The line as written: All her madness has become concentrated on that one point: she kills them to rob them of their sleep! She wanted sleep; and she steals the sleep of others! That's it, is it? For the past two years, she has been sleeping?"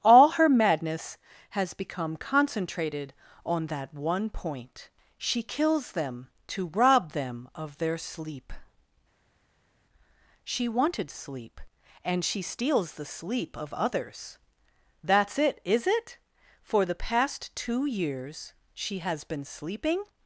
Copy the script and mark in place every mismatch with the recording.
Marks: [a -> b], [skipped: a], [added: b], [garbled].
All her madness has become concentrated on that one point: she kills them to rob them of their sleep! She wanted sleep; and she steals the sleep of others! That's it, is it? For the past two years, she has been sleeping?"